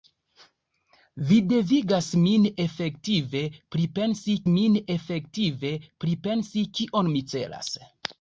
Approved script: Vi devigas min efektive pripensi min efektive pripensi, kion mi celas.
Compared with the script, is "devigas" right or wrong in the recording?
right